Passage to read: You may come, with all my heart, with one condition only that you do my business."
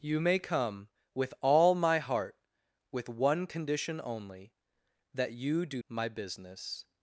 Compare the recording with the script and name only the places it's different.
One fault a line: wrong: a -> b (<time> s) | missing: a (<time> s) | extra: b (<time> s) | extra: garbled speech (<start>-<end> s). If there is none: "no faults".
no faults